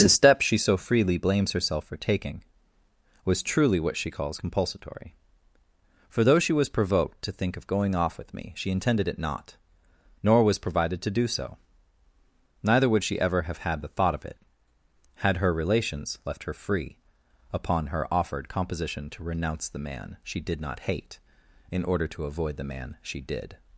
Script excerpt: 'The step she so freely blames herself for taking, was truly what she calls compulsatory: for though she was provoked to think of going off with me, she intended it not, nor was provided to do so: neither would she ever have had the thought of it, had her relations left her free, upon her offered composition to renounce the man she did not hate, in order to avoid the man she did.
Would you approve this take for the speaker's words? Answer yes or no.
yes